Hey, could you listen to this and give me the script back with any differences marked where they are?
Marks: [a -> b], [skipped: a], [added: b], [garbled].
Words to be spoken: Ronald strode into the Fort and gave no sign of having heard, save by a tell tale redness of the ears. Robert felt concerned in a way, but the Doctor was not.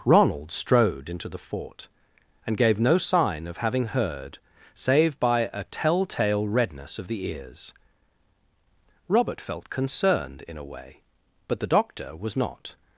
Ronald strode into the Fort and gave no sign of having heard, save by a tell tale redness of the ears. Robert felt concerned in a way, but the Doctor was not.